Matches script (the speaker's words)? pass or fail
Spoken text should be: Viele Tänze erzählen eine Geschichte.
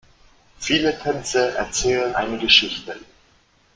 pass